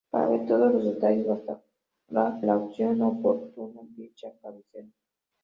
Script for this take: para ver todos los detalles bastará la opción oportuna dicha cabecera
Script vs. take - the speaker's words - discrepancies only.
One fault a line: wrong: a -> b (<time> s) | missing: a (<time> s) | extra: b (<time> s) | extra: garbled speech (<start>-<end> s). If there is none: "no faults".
no faults